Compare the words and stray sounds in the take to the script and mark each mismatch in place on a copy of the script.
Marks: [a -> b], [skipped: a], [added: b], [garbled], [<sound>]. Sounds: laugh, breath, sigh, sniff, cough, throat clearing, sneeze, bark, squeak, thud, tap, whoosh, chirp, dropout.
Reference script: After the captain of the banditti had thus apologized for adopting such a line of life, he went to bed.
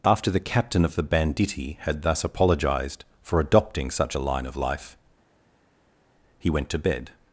After the captain of the banditti had thus apologized for adopting such a line of life, he went to bed.